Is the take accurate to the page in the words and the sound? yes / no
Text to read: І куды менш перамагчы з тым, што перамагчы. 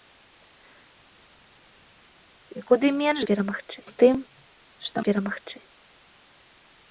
yes